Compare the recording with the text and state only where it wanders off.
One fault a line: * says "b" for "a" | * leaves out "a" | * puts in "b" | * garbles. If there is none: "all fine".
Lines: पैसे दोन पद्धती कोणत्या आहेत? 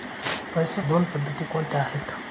all fine